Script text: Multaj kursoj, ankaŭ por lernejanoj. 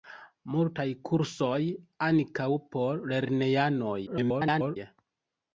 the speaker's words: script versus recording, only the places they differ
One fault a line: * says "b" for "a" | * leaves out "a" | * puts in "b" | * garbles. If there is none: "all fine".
* garbles